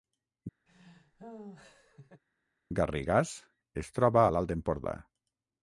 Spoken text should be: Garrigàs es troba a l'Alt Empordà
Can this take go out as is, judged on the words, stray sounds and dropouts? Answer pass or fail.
fail